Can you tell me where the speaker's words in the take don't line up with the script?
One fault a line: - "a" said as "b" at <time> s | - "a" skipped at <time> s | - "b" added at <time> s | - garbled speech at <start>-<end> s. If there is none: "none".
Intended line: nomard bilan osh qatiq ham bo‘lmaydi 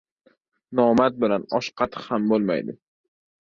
none